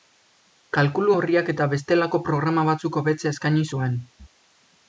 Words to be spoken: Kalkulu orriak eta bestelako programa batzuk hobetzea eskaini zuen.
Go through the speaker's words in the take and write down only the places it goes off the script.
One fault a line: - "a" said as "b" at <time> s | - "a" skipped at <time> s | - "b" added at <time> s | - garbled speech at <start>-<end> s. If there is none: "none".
none